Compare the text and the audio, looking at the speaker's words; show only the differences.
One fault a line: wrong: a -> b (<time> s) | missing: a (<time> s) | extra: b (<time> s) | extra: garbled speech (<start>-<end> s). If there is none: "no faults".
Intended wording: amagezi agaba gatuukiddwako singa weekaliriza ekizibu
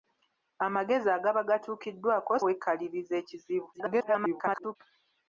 missing: singa (2.3 s)
extra: garbled speech (3.7-4.8 s)